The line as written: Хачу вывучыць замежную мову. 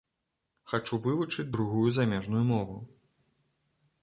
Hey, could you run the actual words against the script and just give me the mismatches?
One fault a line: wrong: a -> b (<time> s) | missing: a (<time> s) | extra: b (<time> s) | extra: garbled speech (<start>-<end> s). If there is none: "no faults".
extra: другую (1.5 s)